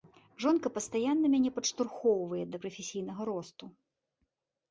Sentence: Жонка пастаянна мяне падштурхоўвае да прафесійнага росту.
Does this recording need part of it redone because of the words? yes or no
no